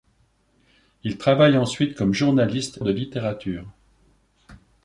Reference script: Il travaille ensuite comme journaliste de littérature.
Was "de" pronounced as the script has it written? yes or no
yes